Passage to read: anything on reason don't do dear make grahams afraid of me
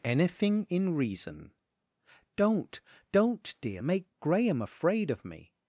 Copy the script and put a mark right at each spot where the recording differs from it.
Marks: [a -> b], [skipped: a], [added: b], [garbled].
anything [on -> in] reason don't [do -> don't] dear make [grahams -> graham] afraid of me